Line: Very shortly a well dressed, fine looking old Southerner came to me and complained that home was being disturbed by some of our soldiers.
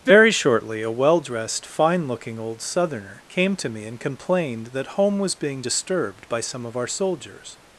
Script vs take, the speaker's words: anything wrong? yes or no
no